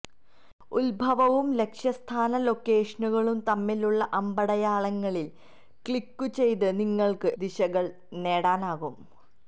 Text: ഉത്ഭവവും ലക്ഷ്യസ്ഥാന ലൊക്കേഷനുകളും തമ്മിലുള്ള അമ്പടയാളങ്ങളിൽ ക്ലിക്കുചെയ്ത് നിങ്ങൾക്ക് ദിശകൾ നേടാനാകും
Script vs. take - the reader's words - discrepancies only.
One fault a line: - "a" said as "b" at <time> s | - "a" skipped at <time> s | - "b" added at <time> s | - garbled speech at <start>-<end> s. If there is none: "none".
none